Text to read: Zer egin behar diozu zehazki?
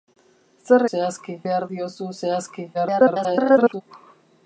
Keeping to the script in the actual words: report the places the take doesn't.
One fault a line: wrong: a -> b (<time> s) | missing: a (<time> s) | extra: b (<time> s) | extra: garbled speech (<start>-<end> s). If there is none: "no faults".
wrong: egin -> zehazki (0.9 s)
extra: garbled speech (2.7-3.8 s)